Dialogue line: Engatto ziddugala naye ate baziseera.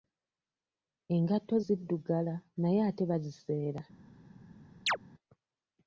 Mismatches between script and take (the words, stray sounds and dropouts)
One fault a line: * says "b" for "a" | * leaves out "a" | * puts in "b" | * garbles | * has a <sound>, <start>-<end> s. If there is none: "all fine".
* has a chirp, 4.9-5.0 s